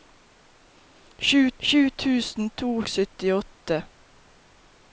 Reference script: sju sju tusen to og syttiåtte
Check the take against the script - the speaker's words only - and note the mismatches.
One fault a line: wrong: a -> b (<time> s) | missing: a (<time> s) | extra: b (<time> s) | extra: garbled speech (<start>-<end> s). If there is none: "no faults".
no faults